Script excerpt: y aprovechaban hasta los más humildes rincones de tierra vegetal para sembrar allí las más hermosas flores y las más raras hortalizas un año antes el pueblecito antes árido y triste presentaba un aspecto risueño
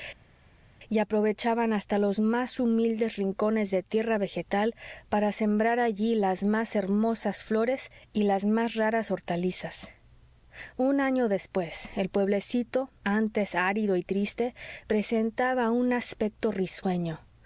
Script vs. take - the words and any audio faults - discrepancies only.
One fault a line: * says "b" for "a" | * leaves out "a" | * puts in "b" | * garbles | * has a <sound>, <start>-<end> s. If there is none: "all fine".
* says "después" for "antes"